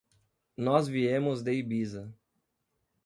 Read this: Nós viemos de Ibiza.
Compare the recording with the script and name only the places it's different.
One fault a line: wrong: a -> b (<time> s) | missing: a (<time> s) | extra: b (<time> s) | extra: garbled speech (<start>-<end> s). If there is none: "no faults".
no faults